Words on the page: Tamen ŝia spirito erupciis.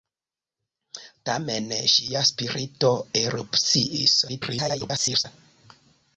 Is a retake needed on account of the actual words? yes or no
yes